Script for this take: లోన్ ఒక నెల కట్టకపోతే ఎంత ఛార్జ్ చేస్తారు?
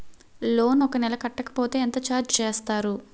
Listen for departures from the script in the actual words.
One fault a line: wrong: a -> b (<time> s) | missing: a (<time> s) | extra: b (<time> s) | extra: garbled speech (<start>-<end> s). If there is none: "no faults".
no faults